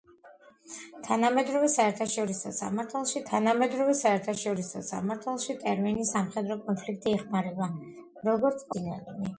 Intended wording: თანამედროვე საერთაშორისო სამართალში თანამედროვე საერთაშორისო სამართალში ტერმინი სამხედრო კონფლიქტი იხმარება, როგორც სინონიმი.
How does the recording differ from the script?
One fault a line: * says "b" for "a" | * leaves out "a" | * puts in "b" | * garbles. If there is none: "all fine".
all fine